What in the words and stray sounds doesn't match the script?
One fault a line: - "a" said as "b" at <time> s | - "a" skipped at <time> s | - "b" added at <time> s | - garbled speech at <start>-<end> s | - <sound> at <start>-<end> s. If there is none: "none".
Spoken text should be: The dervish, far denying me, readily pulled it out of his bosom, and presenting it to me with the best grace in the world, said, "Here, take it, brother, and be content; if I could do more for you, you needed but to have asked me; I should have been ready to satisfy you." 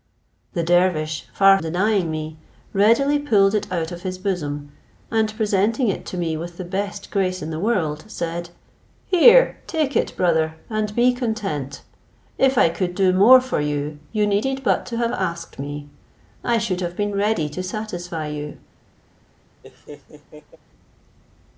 - laugh at 19.6-20.6 s